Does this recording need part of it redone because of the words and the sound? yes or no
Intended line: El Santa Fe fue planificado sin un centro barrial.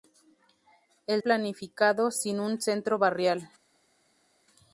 yes